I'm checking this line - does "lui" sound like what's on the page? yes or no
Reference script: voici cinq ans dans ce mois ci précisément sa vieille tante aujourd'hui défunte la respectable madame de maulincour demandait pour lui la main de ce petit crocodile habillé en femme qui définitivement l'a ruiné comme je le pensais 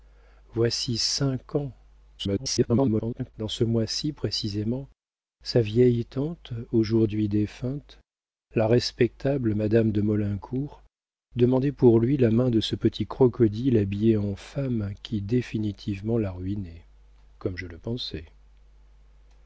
yes